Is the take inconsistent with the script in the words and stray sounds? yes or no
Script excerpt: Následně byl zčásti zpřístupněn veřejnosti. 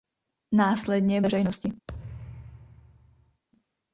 yes